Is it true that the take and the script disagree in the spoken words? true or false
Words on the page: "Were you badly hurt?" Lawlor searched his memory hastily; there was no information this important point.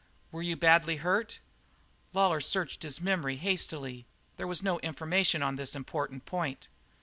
true